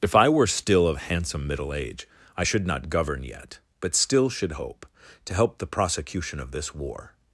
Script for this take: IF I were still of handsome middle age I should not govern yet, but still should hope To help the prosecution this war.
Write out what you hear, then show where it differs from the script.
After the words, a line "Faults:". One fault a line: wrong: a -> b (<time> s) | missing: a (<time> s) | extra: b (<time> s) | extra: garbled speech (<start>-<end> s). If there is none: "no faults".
IF I were still of handsome middle age I should not govern yet, but still should hope To help the prosecution of this war.
Faults:
extra: of (6.4 s)